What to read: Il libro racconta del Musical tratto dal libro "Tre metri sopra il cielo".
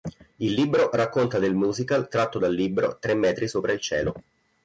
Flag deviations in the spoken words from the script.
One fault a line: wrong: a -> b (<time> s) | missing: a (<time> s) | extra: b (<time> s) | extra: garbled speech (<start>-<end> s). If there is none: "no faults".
no faults